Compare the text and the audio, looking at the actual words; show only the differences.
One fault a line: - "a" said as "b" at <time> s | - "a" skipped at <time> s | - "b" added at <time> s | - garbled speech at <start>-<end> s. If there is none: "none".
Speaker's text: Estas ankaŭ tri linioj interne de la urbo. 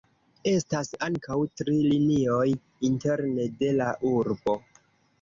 none